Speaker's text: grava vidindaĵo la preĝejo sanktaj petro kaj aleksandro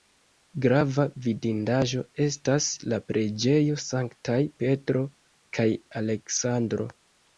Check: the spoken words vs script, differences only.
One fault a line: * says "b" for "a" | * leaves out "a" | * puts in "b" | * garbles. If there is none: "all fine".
* puts in "estas"